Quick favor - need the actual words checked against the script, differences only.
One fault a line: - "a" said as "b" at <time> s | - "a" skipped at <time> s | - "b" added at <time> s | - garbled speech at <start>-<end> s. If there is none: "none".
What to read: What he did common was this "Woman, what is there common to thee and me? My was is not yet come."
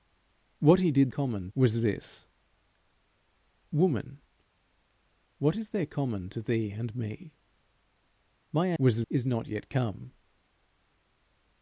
none